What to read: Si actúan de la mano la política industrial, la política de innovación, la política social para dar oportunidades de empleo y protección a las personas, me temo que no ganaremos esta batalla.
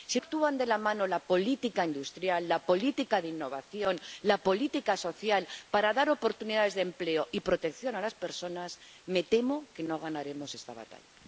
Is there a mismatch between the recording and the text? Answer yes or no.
no